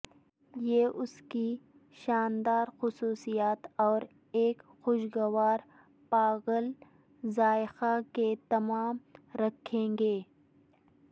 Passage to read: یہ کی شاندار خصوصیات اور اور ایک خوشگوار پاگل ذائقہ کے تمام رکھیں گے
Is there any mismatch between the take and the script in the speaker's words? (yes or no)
yes